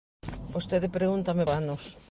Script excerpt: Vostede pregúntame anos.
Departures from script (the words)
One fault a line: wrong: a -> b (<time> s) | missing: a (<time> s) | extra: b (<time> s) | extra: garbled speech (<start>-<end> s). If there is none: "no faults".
no faults